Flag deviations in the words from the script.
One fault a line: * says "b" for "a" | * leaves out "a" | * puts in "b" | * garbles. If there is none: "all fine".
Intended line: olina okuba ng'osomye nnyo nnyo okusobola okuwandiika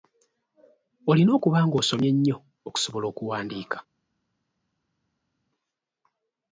* leaves out "nnyo"